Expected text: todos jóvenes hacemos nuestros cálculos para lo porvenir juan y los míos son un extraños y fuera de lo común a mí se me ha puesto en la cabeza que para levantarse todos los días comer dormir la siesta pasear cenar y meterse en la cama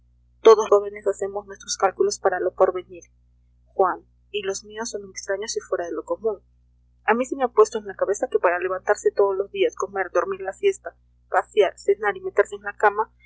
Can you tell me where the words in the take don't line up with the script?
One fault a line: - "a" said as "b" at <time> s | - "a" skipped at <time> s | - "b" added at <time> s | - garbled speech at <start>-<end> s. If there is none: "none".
none